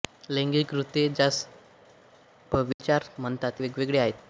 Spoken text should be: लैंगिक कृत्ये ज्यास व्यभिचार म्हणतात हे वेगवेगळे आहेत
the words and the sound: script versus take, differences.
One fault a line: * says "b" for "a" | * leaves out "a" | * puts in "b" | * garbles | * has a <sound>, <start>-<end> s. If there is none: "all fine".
* has a dropout, 2.7-2.8 s
* leaves out "हे"